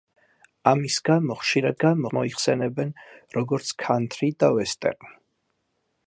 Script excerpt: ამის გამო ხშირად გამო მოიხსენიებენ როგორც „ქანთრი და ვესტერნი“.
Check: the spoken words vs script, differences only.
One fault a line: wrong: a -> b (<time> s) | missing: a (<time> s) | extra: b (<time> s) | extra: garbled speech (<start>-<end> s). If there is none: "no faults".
no faults